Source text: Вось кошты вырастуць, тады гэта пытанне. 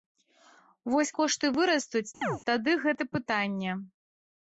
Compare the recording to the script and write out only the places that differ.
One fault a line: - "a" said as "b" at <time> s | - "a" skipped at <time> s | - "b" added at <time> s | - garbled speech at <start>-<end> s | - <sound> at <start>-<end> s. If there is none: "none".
- chirp at 2.2-2.4 s